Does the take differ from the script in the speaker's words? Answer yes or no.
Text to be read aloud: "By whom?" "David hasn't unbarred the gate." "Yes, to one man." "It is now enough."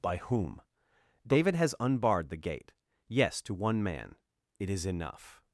yes